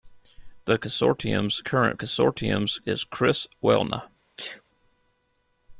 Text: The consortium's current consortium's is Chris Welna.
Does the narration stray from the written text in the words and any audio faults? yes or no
yes